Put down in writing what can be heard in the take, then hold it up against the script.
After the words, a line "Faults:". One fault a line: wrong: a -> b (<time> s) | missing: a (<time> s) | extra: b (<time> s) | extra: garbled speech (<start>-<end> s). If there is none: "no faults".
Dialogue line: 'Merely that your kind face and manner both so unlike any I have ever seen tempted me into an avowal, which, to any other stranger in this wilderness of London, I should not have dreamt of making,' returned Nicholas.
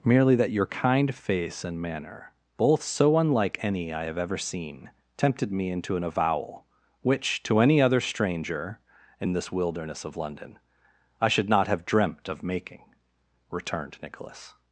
'Merely that your kind face and manner both so unlike any I have ever seen tempted me into an avowal, which, to any other stranger in this wilderness of London, I should not have dreamt of making,' returned Nicholas.
Faults:
no faults